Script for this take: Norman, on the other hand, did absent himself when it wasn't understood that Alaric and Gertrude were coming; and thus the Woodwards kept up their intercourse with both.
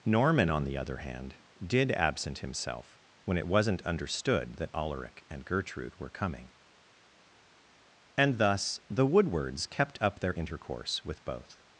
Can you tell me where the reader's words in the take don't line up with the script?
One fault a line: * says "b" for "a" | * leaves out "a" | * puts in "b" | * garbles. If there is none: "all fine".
all fine